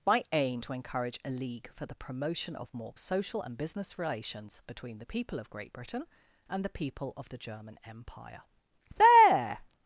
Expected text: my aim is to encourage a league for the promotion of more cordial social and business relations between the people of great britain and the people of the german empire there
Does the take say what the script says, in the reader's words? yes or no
no